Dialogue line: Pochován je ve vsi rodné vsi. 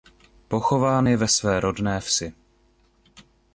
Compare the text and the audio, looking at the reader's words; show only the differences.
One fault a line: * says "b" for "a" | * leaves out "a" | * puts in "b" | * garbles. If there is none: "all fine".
* says "své" for "vsi"